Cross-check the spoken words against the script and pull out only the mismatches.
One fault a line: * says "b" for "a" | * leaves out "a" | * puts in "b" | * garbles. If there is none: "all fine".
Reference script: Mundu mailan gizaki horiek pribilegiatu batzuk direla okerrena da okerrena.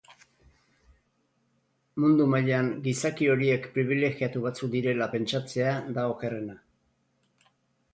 * says "pentsatzea" for "okerrena"